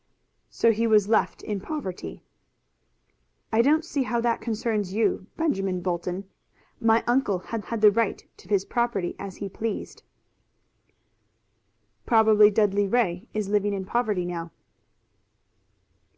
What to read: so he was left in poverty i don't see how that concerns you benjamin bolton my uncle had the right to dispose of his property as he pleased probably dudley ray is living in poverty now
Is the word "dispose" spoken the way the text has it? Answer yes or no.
no